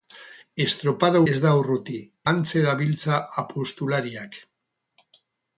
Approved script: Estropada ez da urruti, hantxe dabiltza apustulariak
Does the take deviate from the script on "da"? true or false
false